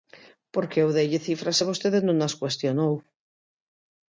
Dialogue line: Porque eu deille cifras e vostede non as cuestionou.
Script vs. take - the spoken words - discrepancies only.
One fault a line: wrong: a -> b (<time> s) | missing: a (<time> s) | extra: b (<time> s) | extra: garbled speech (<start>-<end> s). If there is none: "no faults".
no faults